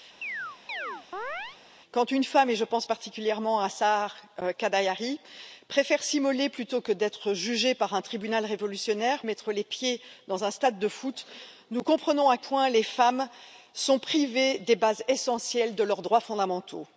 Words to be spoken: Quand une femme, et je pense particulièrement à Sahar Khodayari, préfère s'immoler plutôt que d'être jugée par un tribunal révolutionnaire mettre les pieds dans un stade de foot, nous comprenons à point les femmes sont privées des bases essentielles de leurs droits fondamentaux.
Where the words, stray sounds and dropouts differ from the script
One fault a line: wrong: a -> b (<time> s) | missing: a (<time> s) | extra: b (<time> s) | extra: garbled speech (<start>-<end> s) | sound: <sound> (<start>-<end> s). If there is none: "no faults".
sound: chirp (0.2-1.6 s)